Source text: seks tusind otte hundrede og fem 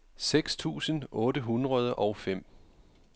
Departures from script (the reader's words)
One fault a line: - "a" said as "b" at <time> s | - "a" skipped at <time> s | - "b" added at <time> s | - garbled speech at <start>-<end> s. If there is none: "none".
none